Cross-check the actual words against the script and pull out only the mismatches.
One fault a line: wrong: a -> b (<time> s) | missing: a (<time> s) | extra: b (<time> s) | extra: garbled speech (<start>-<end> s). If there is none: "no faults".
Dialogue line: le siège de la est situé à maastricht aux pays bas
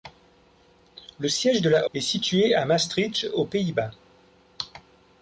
no faults